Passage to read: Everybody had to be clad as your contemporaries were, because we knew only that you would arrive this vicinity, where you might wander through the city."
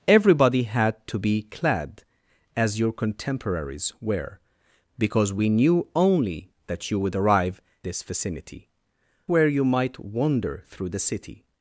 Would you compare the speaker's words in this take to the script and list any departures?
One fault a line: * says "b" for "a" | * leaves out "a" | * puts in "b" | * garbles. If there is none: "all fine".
all fine